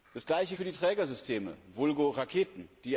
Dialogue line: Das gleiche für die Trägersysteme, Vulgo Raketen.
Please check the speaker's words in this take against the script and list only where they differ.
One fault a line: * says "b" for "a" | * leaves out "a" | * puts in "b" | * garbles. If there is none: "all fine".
all fine